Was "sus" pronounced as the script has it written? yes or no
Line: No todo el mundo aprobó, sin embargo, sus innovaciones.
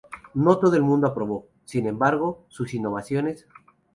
yes